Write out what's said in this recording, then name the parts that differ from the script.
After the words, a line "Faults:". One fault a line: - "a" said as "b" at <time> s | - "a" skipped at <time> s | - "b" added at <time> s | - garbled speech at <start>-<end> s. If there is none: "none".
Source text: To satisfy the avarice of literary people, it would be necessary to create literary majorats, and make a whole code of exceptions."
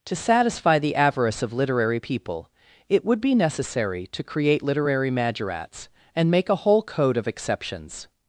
To satisfy the avarice of literary people, it would be necessary to create literary majorats, and make a whole code of exceptions."
Faults:
none